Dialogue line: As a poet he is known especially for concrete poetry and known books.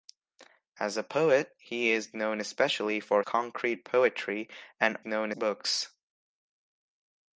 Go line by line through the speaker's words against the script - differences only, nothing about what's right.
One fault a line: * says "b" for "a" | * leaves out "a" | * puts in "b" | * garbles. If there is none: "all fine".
all fine